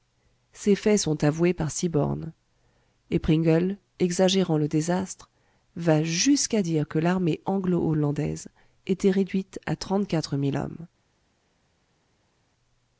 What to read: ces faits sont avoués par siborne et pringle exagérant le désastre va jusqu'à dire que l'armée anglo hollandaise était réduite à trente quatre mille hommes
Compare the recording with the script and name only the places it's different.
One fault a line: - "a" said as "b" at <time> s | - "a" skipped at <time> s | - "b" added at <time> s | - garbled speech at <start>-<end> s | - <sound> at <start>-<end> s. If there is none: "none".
none